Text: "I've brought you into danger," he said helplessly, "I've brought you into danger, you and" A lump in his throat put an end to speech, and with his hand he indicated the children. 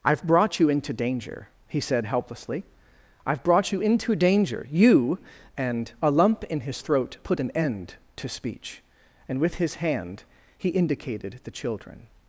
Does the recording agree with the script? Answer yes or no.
yes